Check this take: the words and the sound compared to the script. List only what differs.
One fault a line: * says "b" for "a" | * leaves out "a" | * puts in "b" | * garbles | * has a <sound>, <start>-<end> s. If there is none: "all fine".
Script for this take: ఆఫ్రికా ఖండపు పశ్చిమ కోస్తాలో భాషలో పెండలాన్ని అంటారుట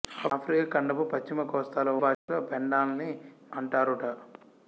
* has a dropout, 2.1-2.3 s